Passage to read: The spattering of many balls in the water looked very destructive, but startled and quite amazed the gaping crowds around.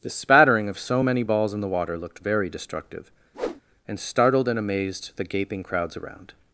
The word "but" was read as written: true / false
false